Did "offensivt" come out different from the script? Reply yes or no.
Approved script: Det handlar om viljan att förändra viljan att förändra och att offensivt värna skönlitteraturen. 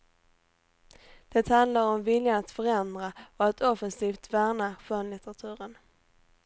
no